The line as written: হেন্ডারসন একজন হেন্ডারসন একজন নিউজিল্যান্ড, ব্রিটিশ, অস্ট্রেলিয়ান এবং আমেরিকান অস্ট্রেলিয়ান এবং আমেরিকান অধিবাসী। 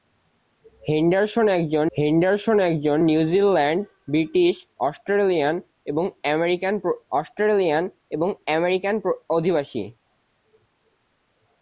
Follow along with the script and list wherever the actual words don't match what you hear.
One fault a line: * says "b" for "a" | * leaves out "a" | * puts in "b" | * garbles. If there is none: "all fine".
all fine